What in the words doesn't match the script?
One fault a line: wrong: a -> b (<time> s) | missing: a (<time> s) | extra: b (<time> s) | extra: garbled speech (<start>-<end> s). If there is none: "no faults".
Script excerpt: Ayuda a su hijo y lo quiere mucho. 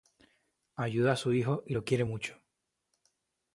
no faults